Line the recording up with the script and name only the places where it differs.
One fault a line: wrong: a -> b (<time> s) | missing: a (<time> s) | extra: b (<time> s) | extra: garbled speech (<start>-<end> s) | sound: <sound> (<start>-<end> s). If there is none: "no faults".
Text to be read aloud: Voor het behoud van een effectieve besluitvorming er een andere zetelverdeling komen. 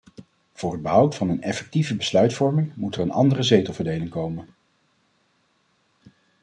extra: moet (2.7 s)